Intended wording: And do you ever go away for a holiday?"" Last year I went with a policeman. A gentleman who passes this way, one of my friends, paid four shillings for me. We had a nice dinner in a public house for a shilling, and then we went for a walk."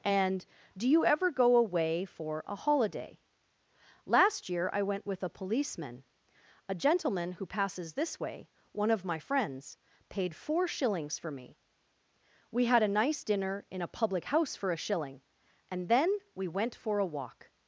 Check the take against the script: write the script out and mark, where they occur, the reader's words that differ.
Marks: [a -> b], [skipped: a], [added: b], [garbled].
And do you ever go away for a holiday?"" Last year I went with a policeman. A gentleman who passes this way, one of my friends, paid four shillings for me. We had a nice dinner in a public house for a shilling, and then we went for a walk."